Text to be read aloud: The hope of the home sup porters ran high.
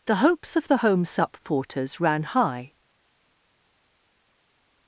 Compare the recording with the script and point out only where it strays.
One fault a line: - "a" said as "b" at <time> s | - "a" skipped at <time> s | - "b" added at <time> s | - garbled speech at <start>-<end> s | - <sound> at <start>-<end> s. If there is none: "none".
- "hope" said as "hopes" at 0.1 s